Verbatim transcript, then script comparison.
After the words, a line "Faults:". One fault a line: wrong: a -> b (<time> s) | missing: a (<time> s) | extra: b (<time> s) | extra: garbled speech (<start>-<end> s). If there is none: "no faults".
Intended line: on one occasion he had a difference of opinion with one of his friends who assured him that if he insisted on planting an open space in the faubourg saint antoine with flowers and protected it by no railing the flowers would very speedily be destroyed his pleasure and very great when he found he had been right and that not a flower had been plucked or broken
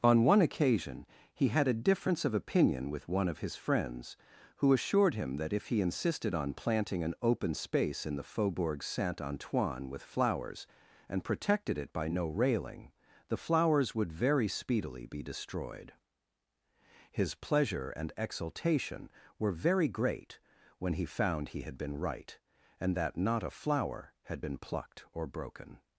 on one occasion he had a difference of opinion with one of his friends who assured him that if he insisted on planting an open space in the faubourg saint antoine with flowers and protected it by no railing the flowers would very speedily be destroyed his pleasure and exultation were very great when he found he had been right and that not a flower had been plucked or broken
Faults:
extra: exultation were (18.2 s)